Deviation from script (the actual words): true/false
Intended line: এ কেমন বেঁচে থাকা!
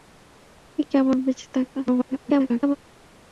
true